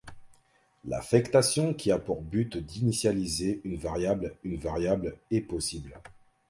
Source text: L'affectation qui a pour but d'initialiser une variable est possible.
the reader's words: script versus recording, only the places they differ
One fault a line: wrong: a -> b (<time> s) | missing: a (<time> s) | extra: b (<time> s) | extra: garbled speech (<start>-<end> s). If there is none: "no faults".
extra: une variable (4.4 s)